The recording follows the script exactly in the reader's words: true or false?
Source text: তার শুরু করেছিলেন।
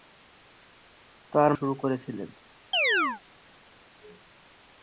true